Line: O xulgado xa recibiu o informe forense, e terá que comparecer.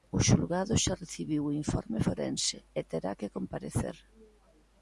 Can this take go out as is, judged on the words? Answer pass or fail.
pass